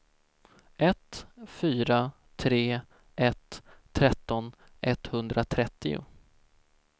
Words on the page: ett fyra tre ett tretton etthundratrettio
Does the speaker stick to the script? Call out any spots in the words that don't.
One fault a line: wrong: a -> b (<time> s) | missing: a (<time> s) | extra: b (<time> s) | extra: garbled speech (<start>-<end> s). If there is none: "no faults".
no faults